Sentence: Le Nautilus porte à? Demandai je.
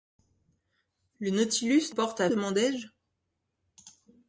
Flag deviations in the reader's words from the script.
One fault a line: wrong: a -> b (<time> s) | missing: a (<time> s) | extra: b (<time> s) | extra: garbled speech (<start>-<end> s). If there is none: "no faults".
no faults